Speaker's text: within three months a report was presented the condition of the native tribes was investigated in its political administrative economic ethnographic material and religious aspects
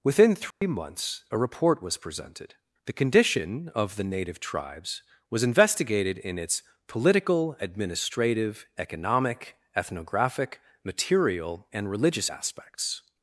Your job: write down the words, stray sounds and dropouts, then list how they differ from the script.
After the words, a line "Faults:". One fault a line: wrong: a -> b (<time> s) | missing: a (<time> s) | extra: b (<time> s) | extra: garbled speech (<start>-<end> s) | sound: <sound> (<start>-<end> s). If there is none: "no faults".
within three months a report was presented the condition of the native tribes was investigated in its political administrative economic ethnographic material and religious aspects
Faults:
sound: dropout (0.5-0.6 s)